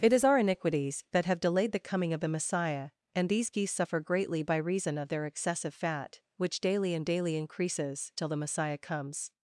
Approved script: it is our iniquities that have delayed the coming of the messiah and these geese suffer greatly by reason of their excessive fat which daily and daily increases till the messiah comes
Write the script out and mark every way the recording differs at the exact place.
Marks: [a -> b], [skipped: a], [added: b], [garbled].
it is our iniquities that have delayed the coming of the messiah and these geese suffer greatly by reason of their excessive fat which daily and daily increases till the messiah comes